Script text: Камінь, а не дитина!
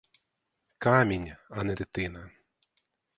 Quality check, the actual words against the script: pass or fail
pass